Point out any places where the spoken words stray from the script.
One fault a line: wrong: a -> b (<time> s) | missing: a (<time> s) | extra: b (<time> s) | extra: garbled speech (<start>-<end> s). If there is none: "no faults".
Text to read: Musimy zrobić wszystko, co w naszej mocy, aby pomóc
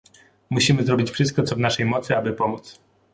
no faults